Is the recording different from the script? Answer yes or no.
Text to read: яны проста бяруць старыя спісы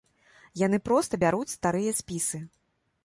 no